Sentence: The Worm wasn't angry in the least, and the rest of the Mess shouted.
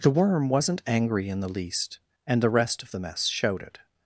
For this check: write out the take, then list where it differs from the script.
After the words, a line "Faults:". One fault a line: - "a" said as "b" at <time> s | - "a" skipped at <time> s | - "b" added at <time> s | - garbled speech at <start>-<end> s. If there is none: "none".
The Worm wasn't angry in the least, and the rest of the Mess showed it.
Faults:
- "shouted" said as "showed it" at 3.3 s